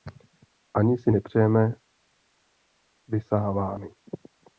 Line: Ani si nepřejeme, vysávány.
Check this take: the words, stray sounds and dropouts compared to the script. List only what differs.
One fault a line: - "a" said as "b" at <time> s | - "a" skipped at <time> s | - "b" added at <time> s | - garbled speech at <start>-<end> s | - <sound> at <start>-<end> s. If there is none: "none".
none